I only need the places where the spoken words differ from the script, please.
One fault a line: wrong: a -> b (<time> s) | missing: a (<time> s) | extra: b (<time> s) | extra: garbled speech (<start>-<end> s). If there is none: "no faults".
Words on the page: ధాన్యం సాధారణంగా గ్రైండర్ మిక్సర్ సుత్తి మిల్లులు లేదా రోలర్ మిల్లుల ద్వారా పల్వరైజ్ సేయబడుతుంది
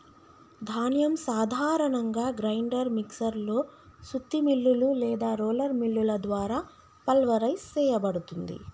extra: లో (3.4 s)